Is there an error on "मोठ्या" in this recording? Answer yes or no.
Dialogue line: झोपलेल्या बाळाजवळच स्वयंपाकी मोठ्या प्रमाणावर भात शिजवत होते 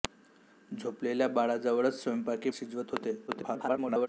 yes